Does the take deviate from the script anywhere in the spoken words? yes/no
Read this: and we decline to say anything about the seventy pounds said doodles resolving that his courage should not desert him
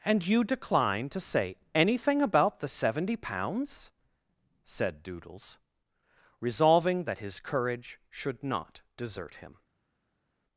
yes